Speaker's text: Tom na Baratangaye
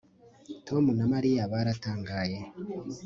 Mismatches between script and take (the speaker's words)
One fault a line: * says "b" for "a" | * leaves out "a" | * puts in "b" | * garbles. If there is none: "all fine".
* puts in "Mariya"